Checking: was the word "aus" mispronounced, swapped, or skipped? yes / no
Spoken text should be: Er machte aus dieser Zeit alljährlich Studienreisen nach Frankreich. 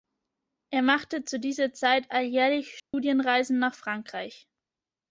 yes